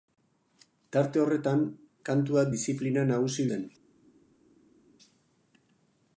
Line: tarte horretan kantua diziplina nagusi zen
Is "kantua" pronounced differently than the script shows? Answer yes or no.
no